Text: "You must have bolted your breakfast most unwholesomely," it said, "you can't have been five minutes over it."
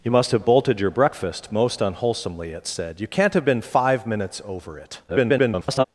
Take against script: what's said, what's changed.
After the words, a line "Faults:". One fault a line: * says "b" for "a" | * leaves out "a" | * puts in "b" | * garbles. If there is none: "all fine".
"You must have bolted your breakfast most unwholesomely," it said, "you can't have been five minutes over it." [garbled]
Faults:
* garbles